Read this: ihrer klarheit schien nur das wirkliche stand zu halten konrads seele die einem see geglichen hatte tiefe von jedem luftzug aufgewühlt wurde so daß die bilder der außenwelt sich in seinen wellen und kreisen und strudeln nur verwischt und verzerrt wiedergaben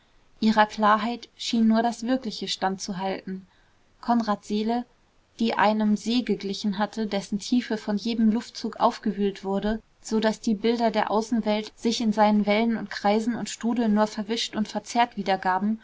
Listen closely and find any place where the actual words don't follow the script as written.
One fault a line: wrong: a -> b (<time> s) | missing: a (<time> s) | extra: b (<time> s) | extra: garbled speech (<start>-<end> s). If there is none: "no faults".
extra: dessen (7.1 s)